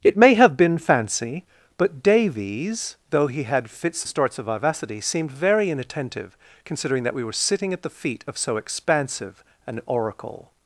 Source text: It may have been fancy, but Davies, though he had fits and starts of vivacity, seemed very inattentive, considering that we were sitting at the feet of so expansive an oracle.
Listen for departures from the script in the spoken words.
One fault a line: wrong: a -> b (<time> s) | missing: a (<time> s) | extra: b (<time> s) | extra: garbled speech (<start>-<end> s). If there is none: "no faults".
missing: and (4.0 s)